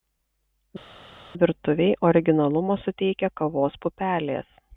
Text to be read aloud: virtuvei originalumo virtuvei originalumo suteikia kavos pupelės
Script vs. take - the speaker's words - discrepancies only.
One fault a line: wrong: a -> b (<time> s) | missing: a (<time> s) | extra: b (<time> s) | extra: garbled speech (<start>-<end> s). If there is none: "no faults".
missing: virtuvei originalumo (2.8 s)